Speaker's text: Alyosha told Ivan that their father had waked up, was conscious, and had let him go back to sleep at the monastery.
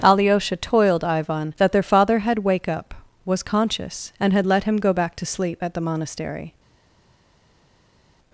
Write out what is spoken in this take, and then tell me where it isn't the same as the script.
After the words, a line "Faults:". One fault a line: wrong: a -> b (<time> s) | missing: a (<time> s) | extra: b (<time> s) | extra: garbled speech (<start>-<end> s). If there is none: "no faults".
Alyosha toiled Ivan that their father had wake up, was conscious, and had let him go back to sleep at the monastery.
Faults:
wrong: told -> toiled (0.6 s)
wrong: waked -> wake (2.4 s)